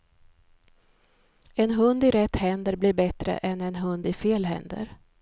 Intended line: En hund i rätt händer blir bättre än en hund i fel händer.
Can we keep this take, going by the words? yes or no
yes